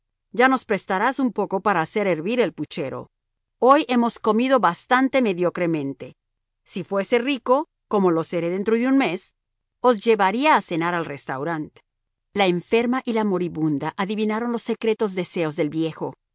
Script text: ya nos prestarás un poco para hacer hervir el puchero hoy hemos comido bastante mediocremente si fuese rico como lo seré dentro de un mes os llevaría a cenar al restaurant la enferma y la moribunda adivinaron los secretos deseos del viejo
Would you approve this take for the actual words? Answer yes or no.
yes